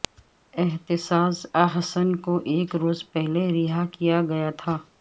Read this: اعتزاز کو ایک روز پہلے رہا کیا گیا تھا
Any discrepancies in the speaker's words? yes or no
yes